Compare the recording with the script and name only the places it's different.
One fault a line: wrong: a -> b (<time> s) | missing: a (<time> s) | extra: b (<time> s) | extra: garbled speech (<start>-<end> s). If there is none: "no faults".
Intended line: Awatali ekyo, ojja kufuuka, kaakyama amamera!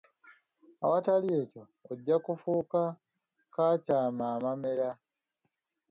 no faults